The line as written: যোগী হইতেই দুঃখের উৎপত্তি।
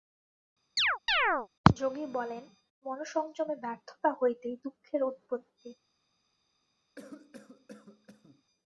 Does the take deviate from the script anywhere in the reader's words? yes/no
yes